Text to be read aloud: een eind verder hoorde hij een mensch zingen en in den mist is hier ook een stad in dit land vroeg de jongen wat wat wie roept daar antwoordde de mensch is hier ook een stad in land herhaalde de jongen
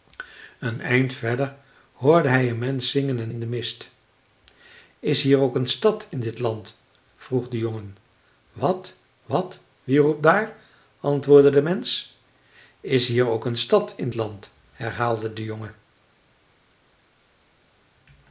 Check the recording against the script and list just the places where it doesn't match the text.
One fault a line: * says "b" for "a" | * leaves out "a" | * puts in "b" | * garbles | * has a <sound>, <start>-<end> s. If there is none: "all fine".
all fine